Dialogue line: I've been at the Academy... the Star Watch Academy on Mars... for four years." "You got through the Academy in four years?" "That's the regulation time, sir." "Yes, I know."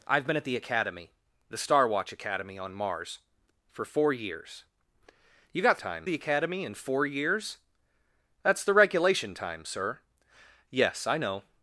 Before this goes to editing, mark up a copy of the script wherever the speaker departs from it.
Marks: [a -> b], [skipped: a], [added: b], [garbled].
I've been at the Academy... the Star Watch Academy on Mars... for four years." "You got [through -> time] the Academy in four years?" "That's the regulation time, sir." "Yes, I know."